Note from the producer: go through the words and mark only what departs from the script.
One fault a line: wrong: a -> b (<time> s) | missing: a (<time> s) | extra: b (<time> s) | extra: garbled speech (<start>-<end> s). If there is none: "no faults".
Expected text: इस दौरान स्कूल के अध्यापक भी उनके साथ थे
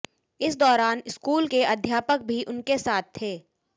no faults